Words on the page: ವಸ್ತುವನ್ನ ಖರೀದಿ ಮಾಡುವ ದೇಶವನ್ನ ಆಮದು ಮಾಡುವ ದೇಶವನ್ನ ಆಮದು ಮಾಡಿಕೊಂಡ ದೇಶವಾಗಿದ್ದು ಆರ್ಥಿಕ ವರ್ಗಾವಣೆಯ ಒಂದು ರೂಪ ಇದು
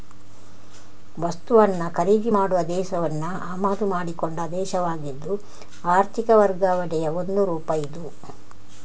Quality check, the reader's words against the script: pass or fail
fail